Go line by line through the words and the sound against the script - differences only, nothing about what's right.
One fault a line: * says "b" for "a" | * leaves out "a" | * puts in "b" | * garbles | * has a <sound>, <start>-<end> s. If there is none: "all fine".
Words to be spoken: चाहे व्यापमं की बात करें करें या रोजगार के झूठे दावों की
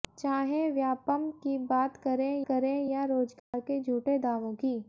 * has a dropout, 3.4-3.5 s